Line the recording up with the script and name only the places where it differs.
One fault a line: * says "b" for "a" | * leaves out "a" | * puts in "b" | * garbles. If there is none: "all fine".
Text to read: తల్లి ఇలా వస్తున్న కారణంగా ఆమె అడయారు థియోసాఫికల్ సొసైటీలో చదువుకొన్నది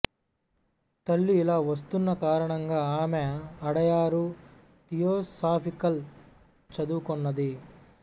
* leaves out "సొసైటీలో"